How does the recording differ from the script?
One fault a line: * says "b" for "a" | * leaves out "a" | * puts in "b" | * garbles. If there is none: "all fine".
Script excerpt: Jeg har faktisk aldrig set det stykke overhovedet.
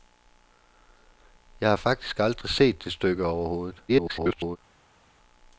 * garbles